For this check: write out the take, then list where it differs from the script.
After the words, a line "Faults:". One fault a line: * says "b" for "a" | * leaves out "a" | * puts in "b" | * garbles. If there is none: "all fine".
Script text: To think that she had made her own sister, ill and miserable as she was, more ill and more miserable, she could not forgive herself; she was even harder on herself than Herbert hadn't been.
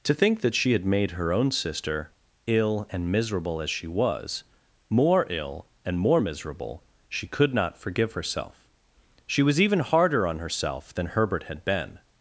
To think that she had made her own sister, ill and miserable as she was, more ill and more miserable, she could not forgive herself; she was even harder on herself than Herbert had been.
Faults:
* says "had" for "hadn't"